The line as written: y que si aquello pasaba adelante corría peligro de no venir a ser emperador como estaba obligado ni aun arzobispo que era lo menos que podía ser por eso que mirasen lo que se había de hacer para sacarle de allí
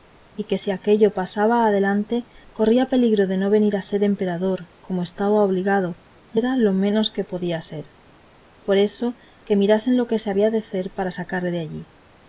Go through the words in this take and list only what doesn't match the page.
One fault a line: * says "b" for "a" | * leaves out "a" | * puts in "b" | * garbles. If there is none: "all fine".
* leaves out "aun arzobispo que"